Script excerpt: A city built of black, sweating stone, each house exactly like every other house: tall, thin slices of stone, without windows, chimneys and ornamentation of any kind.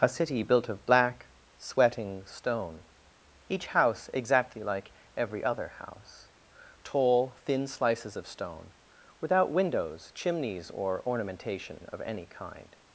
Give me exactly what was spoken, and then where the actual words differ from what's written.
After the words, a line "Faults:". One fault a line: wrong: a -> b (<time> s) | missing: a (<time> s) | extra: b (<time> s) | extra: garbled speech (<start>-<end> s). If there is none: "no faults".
A city built of black, sweating stone, each house exactly like every other house: tall, thin slices of stone, without windows, chimneys or ornamentation of any kind.
Faults:
wrong: and -> or (10.7 s)